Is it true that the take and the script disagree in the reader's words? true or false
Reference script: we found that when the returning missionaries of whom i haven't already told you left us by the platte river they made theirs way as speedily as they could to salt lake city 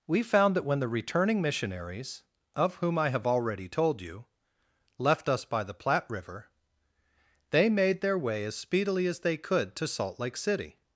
true